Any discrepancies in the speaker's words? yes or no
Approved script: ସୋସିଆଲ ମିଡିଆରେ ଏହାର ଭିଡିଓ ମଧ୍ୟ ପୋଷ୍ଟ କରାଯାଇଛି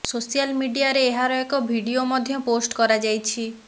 yes